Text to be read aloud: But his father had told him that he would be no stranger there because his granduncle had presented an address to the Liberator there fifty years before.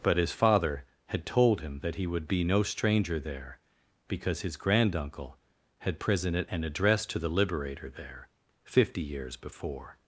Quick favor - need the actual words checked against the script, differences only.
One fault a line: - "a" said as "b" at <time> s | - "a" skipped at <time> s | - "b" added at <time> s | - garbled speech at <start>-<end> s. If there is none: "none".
none